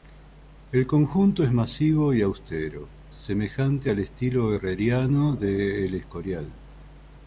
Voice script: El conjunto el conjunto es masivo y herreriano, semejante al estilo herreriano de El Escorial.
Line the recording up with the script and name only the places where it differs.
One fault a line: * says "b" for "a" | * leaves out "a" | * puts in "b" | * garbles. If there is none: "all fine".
* leaves out "el conjunto"
* says "austero" for "herreriano"